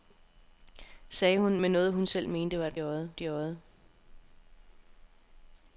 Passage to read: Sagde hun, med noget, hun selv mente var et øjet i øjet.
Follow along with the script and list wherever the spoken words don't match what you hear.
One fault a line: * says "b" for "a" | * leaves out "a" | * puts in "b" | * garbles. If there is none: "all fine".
all fine